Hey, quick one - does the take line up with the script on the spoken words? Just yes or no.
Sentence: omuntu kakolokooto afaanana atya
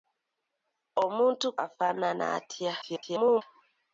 no